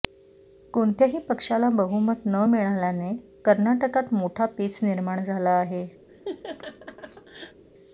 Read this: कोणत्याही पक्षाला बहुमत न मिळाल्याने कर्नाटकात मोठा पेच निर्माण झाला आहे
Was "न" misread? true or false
false